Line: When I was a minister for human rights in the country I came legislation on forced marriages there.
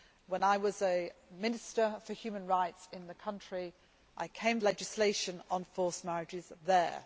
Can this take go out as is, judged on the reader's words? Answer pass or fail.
pass